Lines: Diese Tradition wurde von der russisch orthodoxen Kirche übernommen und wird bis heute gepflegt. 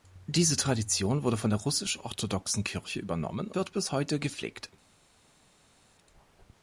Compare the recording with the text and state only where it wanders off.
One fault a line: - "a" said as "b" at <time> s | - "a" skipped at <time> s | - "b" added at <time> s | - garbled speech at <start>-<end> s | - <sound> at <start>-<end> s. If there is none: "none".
- "und" skipped at 3.5 s